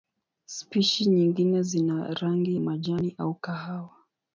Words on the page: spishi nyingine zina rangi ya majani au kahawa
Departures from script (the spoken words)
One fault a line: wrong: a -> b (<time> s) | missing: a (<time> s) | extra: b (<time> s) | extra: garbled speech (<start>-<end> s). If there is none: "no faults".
missing: ya (2.5 s)